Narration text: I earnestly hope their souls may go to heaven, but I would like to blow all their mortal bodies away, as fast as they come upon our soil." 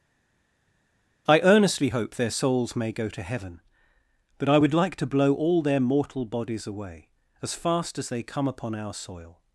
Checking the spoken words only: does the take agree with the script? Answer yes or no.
yes